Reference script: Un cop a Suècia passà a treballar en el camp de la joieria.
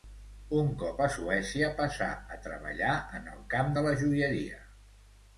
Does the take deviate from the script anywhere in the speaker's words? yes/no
no